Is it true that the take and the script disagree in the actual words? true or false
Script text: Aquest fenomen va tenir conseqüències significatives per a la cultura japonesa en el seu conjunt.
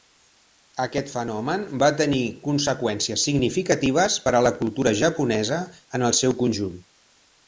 false